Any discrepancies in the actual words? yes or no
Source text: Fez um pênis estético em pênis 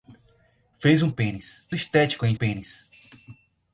no